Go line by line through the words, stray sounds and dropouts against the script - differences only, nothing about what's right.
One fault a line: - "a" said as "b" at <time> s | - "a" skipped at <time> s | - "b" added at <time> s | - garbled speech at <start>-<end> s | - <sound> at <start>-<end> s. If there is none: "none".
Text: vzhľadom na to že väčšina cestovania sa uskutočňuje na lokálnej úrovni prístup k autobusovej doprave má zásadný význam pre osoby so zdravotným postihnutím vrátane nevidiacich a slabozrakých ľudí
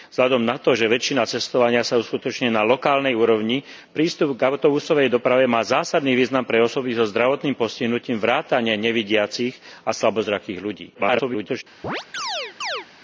- garbled speech at 10.9-11.6 s
- chirp at 11.8-12.9 s